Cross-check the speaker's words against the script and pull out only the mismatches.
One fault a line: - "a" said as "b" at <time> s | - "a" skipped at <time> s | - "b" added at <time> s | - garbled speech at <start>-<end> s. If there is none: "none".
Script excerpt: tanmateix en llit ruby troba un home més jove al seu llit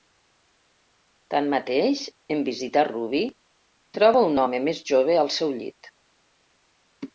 - "llit" said as "visitar" at 2.5 s